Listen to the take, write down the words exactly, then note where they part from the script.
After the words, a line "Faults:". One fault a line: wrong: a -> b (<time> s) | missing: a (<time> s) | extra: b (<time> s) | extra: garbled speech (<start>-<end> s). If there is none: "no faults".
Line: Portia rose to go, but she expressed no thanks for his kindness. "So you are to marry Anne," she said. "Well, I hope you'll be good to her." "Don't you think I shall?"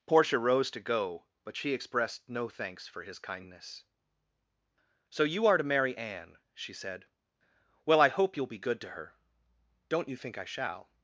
Portia rose to go, but she expressed no thanks for his kindness. "So you are to marry Anne," she said. "Well, I hope you'll be good to her." "Don't you think I shall?"
Faults:
no faults